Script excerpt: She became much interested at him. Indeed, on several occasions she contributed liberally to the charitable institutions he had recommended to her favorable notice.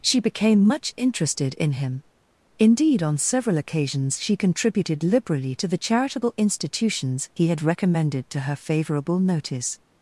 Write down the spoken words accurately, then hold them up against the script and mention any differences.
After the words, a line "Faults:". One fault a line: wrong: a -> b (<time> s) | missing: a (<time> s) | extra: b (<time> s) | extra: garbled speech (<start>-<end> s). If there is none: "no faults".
She became much interested in him. Indeed, on several occasions she contributed liberally to the charitable institutions he had recommended to her favorable notice.
Faults:
wrong: at -> in (1.5 s)